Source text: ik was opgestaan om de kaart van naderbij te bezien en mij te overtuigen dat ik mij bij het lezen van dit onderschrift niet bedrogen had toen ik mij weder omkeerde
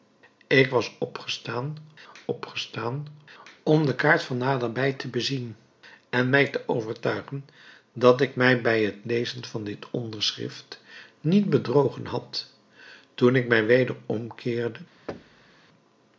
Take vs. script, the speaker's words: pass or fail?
fail